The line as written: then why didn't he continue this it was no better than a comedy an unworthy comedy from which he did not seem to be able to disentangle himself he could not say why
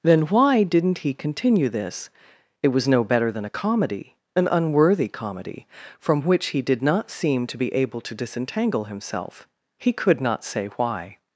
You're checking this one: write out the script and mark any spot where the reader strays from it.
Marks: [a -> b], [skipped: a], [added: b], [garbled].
then why didn't he continue this it was no better than a comedy an unworthy comedy from which he did not seem to be able to disentangle himself he could not say why